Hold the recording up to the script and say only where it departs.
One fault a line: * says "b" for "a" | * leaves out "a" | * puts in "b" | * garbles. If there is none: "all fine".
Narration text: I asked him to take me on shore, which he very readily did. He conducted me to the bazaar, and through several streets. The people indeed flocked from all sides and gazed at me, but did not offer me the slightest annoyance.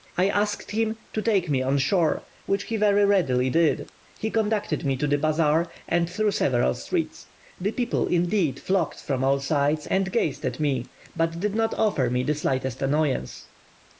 all fine